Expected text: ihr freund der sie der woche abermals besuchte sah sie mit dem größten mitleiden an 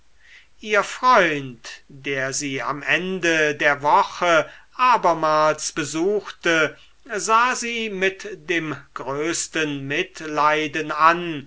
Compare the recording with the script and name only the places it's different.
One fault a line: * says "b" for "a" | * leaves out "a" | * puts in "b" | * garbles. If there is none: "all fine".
* puts in "am ende"